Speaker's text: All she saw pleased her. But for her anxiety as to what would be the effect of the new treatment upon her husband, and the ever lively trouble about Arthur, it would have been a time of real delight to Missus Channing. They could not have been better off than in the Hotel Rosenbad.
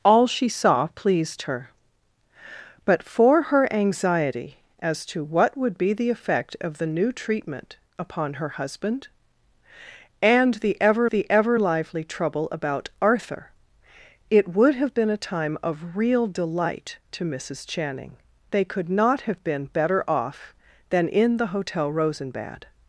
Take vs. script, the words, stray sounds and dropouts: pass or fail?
fail